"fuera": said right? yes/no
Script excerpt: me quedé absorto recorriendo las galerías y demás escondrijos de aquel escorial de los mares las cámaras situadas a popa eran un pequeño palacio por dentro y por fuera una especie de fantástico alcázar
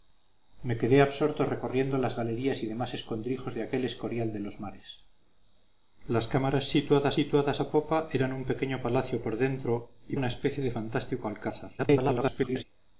no